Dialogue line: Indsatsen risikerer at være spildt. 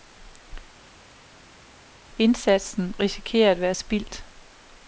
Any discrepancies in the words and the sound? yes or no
no